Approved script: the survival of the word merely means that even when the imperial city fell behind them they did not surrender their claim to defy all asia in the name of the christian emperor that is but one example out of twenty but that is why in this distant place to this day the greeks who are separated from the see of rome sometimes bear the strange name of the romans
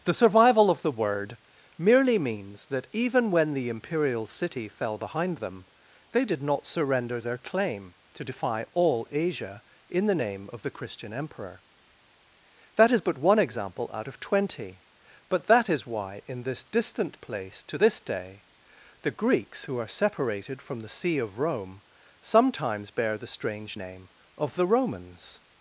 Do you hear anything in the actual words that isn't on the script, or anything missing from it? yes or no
no